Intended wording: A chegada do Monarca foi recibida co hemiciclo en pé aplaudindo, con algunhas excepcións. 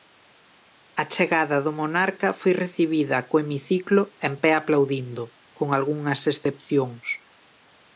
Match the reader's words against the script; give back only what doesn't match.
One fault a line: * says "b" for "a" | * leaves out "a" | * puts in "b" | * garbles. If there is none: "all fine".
all fine